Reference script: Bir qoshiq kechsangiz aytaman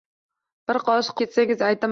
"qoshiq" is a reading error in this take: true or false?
false